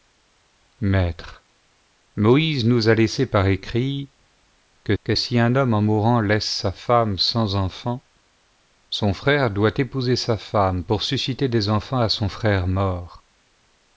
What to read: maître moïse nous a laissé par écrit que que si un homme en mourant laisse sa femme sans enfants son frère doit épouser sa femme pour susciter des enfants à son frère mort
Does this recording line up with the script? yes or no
yes